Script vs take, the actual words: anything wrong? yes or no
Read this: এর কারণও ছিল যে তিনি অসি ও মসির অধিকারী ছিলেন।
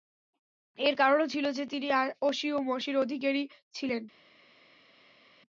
no